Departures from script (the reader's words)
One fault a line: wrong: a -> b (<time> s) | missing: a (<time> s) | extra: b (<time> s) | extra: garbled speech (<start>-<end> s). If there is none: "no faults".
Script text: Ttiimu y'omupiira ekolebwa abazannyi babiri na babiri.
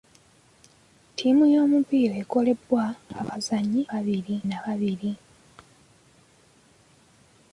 no faults